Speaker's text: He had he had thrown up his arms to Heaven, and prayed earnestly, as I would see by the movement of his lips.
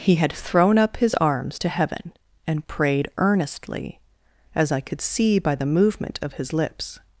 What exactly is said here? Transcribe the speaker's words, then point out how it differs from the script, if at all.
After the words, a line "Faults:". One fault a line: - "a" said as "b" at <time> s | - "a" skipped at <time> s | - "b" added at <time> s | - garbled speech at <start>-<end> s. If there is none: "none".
He had thrown up his arms to Heaven, and prayed earnestly, as I could see by the movement of his lips.
Faults:
- "he had" skipped at 0.3 s
- "would" said as "could" at 4.8 s